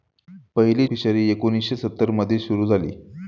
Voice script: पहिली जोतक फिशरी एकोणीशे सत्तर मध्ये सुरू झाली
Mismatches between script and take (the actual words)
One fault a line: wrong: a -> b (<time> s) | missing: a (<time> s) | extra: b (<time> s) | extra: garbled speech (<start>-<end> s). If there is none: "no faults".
missing: जोतक (0.9 s)